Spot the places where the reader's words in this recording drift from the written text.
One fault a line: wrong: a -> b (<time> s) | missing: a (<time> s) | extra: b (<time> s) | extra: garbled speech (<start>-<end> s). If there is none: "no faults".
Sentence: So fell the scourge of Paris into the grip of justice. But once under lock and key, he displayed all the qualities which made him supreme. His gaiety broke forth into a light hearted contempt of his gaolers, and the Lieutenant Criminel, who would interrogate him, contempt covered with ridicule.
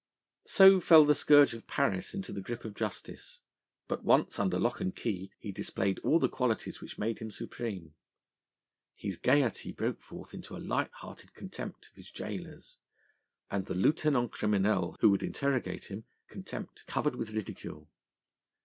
no faults